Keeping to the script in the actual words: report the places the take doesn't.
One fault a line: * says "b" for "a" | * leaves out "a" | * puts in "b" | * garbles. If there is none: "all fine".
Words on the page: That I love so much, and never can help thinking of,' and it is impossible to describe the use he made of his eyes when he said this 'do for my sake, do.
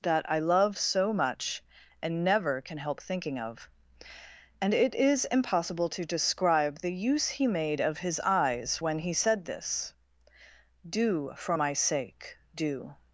all fine